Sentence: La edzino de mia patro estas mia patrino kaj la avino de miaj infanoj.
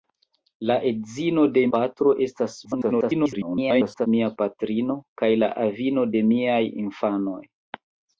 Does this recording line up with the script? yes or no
no